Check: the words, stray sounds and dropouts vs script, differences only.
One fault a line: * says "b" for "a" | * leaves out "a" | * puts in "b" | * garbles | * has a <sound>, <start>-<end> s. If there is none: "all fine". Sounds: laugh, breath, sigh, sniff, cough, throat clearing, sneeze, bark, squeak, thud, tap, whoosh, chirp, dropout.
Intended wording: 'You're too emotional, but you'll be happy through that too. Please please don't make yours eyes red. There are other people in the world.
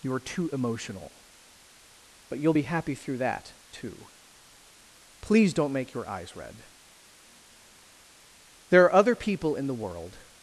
* leaves out "please"
* says "your" for "yours"